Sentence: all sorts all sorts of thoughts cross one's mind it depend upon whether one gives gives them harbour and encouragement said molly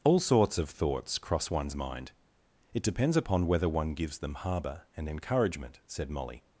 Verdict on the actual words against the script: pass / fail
fail